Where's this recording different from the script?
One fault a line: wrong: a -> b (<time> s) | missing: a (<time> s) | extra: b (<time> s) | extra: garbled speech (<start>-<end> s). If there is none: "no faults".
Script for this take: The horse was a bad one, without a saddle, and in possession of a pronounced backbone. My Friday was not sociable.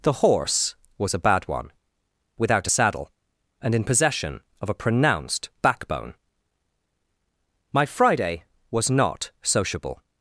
no faults